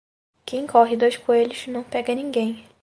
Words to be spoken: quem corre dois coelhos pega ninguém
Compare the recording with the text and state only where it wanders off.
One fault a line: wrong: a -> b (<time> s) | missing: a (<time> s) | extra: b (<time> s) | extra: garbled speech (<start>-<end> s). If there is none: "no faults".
extra: não (1.7 s)